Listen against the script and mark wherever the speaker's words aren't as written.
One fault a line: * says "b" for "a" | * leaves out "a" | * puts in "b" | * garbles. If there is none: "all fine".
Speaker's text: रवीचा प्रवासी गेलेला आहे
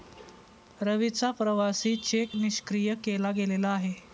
* puts in "चेक निष्क्रिय केला"